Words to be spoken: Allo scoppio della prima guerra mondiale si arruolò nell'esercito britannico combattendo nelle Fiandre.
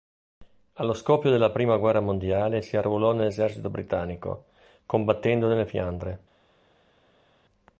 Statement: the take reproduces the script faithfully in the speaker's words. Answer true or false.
true